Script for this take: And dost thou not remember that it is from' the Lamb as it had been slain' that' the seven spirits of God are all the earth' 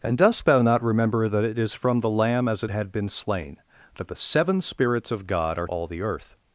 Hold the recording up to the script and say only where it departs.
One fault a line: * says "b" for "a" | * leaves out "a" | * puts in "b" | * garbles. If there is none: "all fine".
all fine